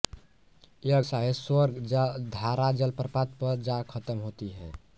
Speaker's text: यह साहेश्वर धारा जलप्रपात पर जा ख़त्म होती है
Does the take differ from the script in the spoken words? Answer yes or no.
no